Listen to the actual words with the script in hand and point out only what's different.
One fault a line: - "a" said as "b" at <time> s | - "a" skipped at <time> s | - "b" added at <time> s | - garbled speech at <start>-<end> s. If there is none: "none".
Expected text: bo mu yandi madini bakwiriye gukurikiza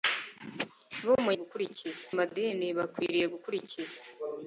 - "yandi" said as "gukurikiza" at 1.4 s